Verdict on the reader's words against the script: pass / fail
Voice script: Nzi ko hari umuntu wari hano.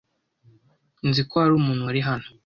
pass